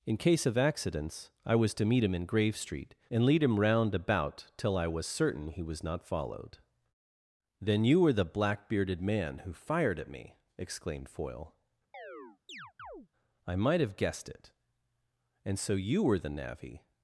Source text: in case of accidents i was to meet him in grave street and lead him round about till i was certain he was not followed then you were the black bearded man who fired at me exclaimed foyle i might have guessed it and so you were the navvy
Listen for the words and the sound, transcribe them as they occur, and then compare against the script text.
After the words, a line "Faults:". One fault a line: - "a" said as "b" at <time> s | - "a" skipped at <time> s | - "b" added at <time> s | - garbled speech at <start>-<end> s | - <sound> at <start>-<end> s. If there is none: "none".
in case of accidents i was to meet him in grave street and lead him round about till i was certain he was not followed then you were the black bearded man who fired at me exclaimed foyle i might have guessed it and so you were the navvy
Faults:
- chirp at 11.9-13.1 s